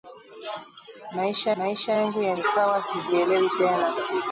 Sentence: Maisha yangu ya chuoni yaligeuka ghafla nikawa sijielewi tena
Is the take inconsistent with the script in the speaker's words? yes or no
yes